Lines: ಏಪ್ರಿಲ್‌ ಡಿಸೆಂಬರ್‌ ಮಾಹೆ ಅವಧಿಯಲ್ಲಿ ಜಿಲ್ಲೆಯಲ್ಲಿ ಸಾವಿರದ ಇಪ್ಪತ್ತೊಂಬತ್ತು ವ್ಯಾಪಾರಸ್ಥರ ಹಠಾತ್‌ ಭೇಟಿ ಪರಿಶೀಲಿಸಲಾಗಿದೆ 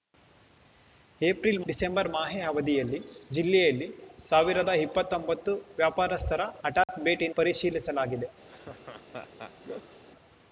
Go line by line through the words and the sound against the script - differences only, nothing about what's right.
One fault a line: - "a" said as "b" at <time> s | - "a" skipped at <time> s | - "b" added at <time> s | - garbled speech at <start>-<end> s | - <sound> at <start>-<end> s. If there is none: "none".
- dropout at 6.8-6.9 s
- laugh at 8.5-10.0 s